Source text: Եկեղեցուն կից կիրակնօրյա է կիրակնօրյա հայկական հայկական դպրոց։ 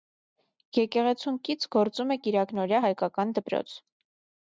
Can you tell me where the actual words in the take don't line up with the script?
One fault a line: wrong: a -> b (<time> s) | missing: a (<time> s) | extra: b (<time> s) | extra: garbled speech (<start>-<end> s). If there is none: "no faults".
wrong: կիրակնօրյա -> գործում (1.8 s)
missing: հայկական (3.4 s)